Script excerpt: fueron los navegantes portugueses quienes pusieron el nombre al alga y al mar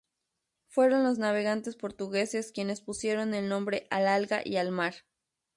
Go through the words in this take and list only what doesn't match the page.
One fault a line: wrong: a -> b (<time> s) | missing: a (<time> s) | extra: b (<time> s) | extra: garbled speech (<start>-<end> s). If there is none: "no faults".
no faults